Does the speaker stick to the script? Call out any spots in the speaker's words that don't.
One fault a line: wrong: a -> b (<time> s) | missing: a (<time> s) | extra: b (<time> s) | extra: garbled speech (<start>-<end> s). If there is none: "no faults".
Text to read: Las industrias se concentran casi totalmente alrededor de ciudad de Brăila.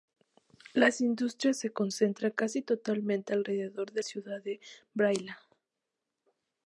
no faults